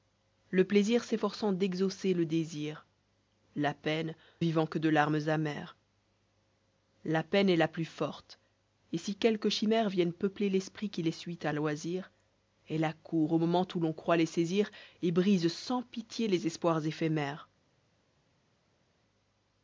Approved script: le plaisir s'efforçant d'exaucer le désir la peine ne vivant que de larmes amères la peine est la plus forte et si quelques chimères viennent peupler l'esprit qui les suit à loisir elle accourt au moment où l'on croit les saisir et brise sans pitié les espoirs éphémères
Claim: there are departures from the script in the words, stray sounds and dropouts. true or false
true